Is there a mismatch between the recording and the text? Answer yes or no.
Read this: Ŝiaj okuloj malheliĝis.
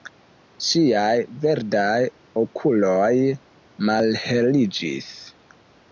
yes